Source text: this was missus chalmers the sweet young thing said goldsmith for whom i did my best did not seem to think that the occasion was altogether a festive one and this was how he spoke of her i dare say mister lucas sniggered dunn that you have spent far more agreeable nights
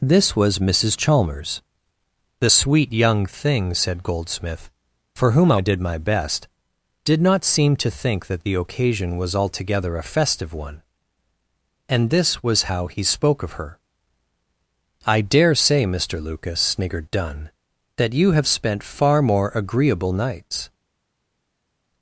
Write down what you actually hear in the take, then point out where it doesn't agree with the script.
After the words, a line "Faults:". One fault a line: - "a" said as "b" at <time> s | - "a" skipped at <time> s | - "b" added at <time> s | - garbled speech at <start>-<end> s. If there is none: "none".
this was missus chalmers the sweet young thing said goldsmith for whom i did my best did not seem to think that the occasion was altogether a festive one and this was how he spoke of her i dare say mister lucas sniggered dunn that you have spent far more agreeable nights
Faults:
none